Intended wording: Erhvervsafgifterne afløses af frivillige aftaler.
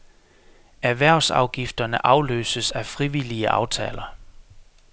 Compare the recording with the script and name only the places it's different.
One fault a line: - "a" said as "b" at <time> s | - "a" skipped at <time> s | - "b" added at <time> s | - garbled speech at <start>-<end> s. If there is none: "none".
none